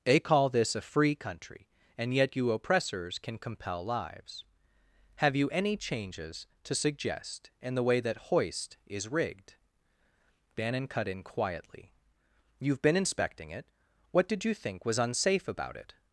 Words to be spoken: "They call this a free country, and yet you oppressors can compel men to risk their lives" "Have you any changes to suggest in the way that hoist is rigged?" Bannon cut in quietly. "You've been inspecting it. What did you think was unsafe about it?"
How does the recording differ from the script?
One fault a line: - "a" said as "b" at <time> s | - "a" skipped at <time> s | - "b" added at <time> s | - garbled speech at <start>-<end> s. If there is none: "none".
- "men to risk their" skipped at 3.9 s